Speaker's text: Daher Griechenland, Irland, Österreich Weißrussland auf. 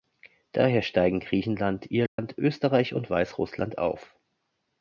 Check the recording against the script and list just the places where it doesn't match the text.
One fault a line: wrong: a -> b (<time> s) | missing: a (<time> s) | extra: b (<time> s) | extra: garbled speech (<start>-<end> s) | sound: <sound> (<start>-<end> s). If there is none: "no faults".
extra: steigen (0.8 s)
sound: dropout (2.1-2.2 s)
extra: und (3.0 s)